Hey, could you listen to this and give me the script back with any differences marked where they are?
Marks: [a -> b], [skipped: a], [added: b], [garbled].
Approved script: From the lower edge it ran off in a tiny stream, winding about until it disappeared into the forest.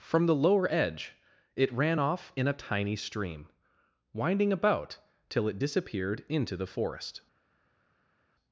From the lower edge it ran off in a tiny stream, winding about [until -> till] it disappeared into the forest.